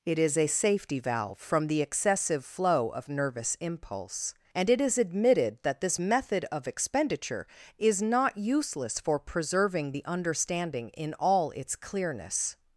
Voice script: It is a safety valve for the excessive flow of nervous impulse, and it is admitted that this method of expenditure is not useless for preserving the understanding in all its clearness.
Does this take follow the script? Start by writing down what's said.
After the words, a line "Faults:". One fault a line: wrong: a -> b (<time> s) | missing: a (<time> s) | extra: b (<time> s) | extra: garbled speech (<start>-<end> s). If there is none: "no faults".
It is a safety valve from the excessive flow of nervous impulse, and it is admitted that this method of expenditure is not useless for preserving the understanding in all its clearness.
Faults:
wrong: for -> from (1.4 s)